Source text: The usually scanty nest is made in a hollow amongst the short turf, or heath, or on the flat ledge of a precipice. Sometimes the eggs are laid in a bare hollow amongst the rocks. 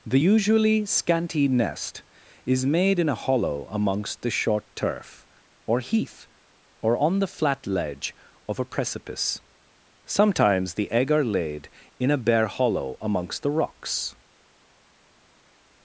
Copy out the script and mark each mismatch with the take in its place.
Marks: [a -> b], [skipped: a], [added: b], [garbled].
The usually scanty nest is made in a hollow amongst the short turf, or heath, or on the flat ledge of a precipice. Sometimes the [eggs -> egg] are laid in a bare hollow amongst the rocks.